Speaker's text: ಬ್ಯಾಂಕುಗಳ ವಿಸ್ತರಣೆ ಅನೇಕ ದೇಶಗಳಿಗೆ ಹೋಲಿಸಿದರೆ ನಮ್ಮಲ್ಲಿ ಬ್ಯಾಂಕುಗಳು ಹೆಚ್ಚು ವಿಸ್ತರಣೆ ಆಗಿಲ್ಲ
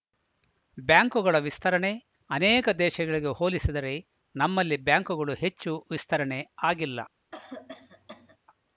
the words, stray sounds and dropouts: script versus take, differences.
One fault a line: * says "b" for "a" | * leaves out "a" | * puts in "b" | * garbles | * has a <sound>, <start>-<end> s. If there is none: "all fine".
* has a cough, 7.3-8.4 s